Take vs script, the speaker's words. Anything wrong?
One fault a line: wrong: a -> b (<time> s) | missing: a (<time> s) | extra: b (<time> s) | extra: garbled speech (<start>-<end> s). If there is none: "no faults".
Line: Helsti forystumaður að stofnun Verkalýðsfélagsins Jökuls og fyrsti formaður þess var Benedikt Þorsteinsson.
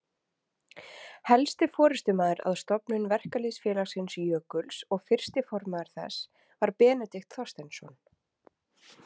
no faults